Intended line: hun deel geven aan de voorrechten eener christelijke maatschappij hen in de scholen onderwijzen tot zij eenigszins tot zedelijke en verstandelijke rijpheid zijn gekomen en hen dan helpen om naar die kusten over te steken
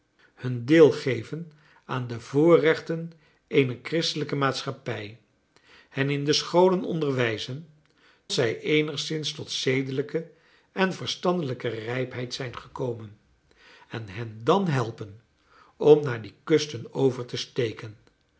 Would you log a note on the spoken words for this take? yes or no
yes